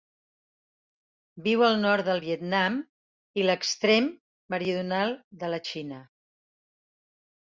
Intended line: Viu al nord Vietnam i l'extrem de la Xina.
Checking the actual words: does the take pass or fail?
fail